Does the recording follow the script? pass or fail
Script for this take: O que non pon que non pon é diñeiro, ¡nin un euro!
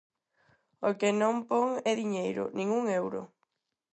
fail